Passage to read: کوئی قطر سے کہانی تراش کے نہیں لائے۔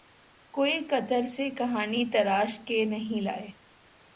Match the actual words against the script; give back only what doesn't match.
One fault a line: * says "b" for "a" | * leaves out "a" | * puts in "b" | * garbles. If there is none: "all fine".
all fine